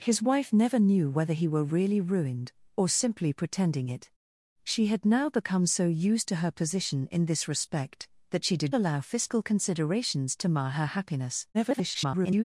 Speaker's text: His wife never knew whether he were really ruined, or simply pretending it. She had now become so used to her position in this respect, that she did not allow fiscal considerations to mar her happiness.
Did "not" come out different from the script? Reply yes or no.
yes